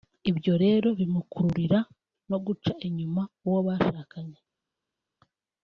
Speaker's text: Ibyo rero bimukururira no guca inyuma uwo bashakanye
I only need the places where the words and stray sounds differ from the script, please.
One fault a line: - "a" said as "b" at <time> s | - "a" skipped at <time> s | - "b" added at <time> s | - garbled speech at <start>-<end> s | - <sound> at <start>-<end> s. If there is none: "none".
none